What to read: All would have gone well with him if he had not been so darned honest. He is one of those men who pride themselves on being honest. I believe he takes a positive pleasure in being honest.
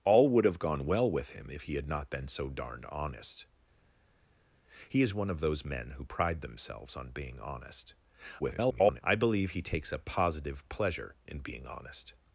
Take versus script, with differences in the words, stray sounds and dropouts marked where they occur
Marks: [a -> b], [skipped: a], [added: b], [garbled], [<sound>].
All would have gone well with him if he had not been so darned honest. He is one of those men who pride themselves on being honest. [garbled] I believe he takes a positive pleasure in being honest.